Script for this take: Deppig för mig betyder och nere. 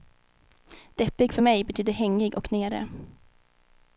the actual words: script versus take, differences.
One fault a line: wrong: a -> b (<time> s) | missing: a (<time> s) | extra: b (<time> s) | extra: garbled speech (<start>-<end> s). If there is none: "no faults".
extra: hängig (1.9 s)